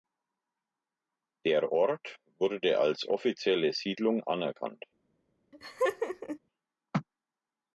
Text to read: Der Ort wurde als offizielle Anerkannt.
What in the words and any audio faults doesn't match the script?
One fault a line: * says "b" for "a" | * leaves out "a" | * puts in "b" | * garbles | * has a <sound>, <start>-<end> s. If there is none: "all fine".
* puts in "Siedlung"
* has a laugh, 5.5-6.4 s